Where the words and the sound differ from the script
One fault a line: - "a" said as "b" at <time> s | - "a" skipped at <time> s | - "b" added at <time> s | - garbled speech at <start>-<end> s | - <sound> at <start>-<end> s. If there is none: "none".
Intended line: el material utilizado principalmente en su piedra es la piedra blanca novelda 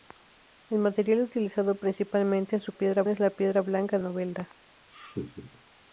- laugh at 4.9-5.6 s